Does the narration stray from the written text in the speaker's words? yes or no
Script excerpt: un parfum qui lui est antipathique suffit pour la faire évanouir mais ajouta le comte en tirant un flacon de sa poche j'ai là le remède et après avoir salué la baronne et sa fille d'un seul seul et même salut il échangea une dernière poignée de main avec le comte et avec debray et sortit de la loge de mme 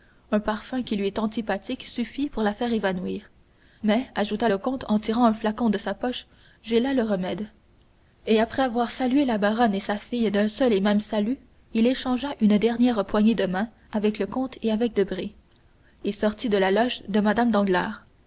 yes